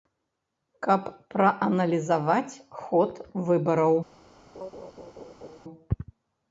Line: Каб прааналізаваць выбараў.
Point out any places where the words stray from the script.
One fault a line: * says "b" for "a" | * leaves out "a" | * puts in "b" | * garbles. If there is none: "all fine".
* puts in "ход"